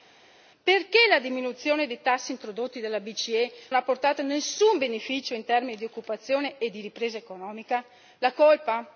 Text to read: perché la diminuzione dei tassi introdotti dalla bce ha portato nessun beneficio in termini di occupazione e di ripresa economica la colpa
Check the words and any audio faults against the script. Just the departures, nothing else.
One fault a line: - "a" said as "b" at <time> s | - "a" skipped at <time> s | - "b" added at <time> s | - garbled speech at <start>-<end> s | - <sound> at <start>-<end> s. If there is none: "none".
none